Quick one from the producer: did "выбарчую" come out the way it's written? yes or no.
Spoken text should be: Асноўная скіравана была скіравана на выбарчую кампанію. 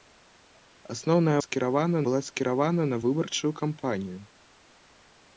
yes